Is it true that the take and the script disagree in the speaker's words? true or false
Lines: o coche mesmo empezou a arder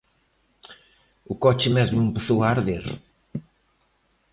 false